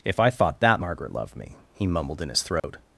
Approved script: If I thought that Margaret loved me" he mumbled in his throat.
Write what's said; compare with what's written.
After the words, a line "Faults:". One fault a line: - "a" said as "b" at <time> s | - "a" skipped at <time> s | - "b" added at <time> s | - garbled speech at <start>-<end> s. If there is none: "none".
If I thought that Margaret loved me" he mumbled in his throat.
Faults:
none